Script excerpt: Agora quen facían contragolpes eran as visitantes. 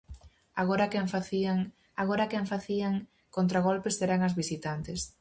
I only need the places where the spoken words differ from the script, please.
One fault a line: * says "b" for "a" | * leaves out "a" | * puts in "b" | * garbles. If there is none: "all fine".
* puts in "agora quen facían"